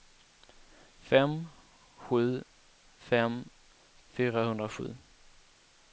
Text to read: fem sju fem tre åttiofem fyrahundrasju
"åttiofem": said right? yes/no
no